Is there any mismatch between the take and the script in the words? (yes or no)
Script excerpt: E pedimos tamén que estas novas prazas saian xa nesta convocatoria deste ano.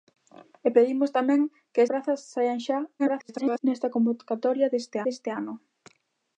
yes